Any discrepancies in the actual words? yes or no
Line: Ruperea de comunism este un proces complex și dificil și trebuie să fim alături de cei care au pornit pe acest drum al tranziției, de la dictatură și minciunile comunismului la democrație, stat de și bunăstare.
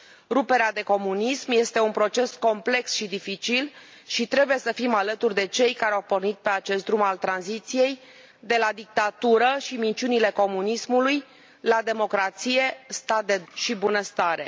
no